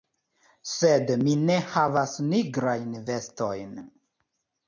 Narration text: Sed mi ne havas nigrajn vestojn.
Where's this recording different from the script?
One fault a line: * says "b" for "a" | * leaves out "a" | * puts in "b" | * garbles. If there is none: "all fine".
all fine